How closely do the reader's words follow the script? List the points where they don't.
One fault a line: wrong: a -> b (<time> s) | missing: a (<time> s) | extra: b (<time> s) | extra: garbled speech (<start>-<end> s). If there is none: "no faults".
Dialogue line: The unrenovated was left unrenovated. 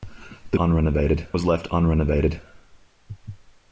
no faults